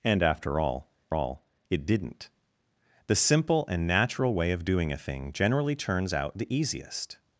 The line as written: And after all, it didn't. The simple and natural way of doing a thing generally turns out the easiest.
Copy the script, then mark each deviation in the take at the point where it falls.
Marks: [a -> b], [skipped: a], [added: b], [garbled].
And after all, [added: all] it didn't. The simple and natural way of doing a thing generally turns out the easiest.